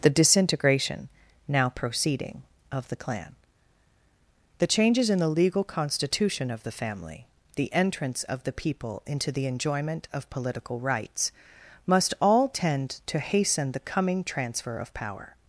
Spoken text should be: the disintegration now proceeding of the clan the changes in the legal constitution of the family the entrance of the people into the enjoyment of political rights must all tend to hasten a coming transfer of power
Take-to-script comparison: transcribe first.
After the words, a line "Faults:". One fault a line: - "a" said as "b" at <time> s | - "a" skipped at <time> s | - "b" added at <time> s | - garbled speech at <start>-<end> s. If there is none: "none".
the disintegration now proceeding of the clan the changes in the legal constitution of the family the entrance of the people into the enjoyment of political rights must all tend to hasten the coming transfer of power
Faults:
- "a" said as "the" at 13.7 s